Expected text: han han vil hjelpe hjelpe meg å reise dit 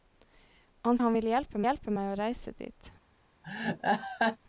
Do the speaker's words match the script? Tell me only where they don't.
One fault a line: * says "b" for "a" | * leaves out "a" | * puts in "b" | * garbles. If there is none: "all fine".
all fine